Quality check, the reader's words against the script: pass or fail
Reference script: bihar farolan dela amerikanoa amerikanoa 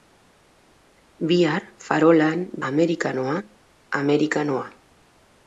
fail